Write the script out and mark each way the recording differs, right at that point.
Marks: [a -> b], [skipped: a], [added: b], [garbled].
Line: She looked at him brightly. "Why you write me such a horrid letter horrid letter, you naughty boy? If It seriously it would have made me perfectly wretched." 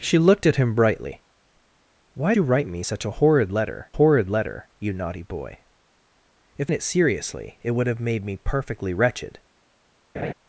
She looked at him brightly. "Why you write me such a horrid letter horrid letter, you naughty boy? If It seriously it would have made me perfectly wretched."